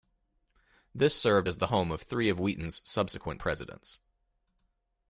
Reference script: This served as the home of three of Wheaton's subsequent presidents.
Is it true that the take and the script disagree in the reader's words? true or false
false